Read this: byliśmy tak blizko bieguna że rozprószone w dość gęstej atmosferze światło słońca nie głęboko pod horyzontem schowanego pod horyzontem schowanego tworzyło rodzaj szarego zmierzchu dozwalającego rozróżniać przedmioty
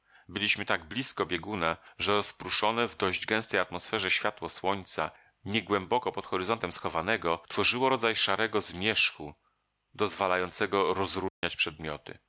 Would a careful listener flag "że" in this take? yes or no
no